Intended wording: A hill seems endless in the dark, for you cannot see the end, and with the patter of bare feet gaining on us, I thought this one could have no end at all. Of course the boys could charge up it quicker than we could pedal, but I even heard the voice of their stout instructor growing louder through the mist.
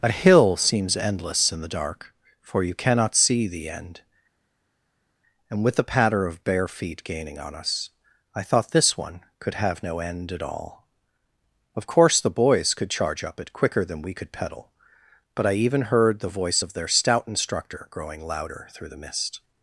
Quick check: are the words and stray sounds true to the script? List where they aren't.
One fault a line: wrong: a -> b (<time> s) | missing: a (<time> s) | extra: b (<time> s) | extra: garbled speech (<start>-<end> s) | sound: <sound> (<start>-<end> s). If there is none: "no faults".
no faults